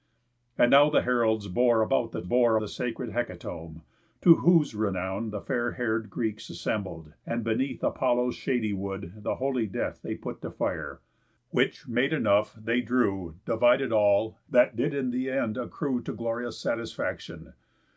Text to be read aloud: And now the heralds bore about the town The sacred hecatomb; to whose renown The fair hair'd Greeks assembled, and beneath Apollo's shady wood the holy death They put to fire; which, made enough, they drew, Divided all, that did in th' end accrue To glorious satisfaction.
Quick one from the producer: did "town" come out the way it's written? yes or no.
no